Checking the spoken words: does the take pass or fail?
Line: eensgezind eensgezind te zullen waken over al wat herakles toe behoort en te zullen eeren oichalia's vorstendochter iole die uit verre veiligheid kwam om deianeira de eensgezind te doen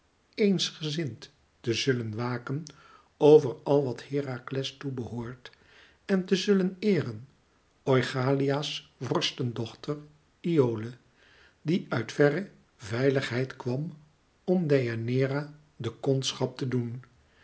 fail